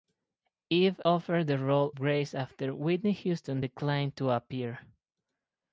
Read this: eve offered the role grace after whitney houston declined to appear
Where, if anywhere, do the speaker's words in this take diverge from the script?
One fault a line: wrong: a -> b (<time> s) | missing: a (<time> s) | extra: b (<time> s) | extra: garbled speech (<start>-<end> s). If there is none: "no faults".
no faults